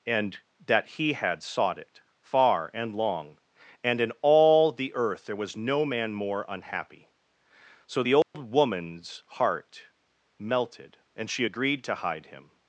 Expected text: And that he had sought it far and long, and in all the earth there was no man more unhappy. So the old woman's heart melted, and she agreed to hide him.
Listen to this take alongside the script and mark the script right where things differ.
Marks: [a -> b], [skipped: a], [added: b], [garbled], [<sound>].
And that he had sought it far and long, and in all the earth there was no man more unhappy. So the old [dropout] woman's heart melted, and she agreed to hide him.